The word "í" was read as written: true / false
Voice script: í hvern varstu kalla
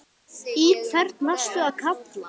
true